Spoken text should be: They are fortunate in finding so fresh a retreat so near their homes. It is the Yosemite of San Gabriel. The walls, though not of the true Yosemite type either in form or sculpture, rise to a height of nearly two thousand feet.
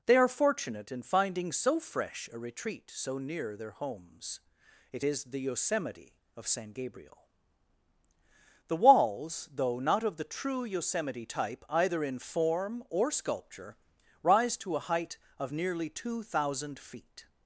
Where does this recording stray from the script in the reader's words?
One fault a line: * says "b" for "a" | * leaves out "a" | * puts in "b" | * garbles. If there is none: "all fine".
all fine